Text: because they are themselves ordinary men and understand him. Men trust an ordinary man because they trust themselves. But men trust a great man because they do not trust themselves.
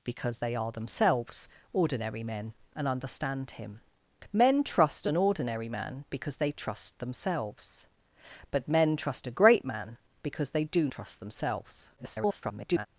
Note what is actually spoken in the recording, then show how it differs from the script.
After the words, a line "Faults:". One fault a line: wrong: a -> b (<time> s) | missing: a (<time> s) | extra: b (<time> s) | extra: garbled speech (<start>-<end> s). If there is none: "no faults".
because they are themselves ordinary men and understand him. Men trust an ordinary man because they trust themselves. But men trust a great man because they do trust themselves. [garbled]
Faults:
missing: not (10.9 s)
extra: garbled speech (12.0-12.9 s)